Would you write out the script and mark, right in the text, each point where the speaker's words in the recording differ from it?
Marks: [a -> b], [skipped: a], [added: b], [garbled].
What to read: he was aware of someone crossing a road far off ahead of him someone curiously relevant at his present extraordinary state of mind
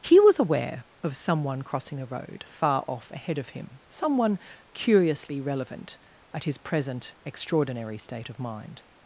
he was aware of someone crossing a road far off ahead of him someone curiously relevant at his present extraordinary state of mind